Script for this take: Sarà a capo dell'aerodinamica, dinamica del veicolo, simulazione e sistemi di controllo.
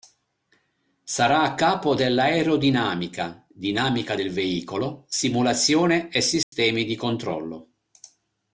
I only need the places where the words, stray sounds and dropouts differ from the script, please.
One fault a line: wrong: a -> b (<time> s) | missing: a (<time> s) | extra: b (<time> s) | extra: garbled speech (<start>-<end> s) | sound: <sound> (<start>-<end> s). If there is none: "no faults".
sound: dropout (6.4-6.5 s)